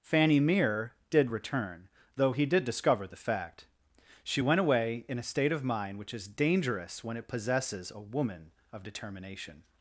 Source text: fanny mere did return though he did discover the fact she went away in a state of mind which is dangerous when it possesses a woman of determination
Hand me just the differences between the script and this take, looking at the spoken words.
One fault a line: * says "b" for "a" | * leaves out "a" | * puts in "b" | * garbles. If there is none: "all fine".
all fine